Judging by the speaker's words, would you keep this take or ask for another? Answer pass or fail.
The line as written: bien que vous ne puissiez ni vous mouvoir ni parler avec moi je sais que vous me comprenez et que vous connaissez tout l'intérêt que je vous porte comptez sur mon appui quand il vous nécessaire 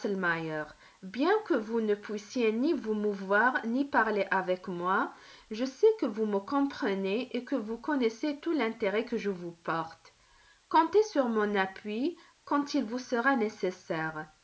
fail